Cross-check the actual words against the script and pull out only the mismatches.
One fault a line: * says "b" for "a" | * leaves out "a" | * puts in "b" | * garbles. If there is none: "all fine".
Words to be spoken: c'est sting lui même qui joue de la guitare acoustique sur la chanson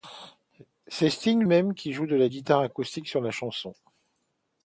* leaves out "lui"